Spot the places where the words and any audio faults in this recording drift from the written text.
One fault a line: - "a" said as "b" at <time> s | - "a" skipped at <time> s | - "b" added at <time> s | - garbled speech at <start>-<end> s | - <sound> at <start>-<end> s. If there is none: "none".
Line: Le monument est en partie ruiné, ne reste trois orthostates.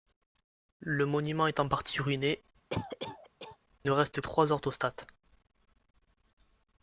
- cough at 2.7-3.6 s